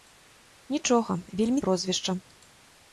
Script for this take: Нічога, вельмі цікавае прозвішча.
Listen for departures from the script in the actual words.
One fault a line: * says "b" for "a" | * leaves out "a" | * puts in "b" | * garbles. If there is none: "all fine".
* leaves out "цікавае"